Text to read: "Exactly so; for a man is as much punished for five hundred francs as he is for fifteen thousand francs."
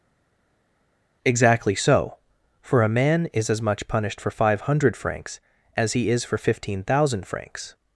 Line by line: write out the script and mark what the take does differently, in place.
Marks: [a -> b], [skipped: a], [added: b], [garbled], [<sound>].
"Exactly so; for a man is as much punished for five hundred francs as he is for fifteen thousand francs."